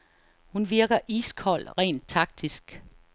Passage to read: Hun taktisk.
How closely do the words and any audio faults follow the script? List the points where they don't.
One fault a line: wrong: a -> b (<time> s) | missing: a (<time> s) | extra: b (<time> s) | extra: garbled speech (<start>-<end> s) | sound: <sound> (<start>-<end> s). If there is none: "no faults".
extra: virker iskold rent (0.7 s)